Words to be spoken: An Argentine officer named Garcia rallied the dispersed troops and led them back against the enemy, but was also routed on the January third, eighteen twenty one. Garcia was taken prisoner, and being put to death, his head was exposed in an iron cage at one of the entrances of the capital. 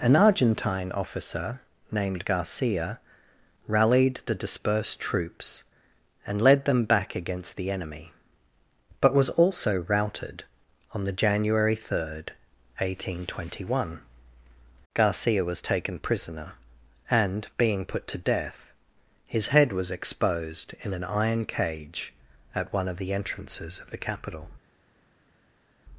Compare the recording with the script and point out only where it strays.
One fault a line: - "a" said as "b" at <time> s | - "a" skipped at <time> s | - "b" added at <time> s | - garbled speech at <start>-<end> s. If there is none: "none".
none